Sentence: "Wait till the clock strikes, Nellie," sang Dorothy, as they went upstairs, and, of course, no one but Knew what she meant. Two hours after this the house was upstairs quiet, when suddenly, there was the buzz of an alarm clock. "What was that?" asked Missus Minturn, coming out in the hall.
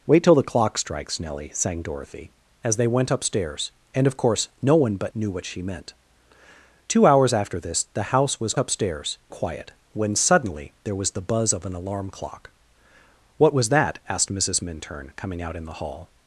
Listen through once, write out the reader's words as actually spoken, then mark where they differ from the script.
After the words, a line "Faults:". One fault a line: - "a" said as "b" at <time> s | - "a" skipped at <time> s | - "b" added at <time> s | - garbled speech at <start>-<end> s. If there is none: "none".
"Wait till the clock strikes, Nellie," sang Dorothy, as they went upstairs, and, of course, no one but Knew what she meant. Two hours after this the house was upstairs quiet, when suddenly, there was the buzz of an alarm clock. "What was that?" asked Missus Minturn, coming out in the hall.
Faults:
none